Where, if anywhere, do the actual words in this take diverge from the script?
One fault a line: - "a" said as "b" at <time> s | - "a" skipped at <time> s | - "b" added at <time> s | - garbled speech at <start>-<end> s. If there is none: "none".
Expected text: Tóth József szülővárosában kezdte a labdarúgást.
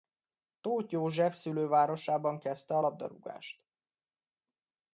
none